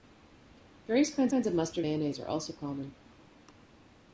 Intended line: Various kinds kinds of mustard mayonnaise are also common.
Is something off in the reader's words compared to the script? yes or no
no